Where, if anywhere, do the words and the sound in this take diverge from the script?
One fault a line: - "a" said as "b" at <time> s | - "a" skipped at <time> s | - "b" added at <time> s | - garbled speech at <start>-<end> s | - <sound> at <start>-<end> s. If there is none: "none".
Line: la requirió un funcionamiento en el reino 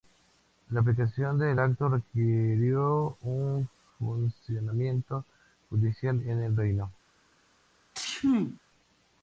- "aplicación del acto" added at 0.8 s
- "judicial" added at 5.7 s
- sneeze at 7.9-8.6 s